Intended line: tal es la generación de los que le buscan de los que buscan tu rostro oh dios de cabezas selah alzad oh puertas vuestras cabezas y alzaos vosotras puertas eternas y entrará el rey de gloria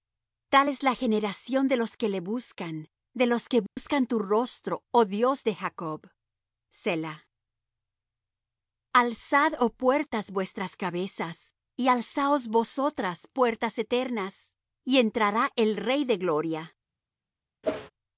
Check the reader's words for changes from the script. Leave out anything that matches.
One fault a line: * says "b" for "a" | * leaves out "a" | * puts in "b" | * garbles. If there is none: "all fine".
* says "jacob" for "cabezas"